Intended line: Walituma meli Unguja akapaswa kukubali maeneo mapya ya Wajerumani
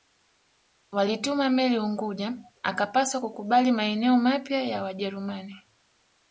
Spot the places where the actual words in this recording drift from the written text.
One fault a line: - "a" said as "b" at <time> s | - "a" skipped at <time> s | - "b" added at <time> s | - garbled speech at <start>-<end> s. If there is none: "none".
none